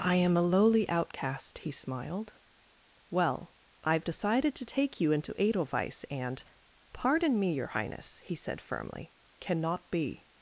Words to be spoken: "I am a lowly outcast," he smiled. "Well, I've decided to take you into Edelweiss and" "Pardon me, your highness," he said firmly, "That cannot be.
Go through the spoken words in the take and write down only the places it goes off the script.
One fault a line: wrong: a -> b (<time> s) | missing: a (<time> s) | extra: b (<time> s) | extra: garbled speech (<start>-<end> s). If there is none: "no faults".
missing: That (9.1 s)